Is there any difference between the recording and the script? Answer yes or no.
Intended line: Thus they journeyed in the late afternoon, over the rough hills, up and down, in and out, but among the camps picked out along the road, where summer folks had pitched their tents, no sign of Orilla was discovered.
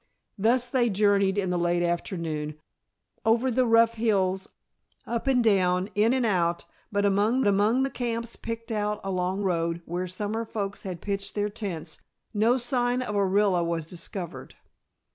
yes